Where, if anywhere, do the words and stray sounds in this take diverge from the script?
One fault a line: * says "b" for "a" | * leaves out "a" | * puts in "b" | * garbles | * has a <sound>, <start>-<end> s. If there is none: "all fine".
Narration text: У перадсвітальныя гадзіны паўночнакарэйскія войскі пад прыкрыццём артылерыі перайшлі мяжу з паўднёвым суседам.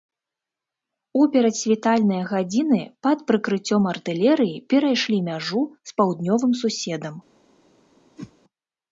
* leaves out "паўночнакарэйскія войскі"
* has a whoosh, 8.2-8.3 s